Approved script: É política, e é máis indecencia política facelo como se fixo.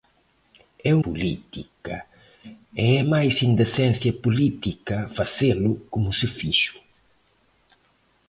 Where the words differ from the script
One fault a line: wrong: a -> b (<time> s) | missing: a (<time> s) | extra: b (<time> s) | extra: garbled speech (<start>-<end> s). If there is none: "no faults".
no faults